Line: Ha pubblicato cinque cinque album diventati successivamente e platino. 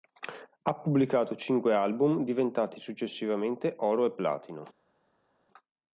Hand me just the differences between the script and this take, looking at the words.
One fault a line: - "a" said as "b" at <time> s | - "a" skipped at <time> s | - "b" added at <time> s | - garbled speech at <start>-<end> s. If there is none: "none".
- "cinque" skipped at 1.8 s
- "oro" added at 3.8 s